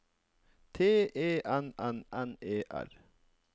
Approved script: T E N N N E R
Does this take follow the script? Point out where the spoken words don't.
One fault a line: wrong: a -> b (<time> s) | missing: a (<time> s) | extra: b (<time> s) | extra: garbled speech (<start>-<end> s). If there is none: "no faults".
no faults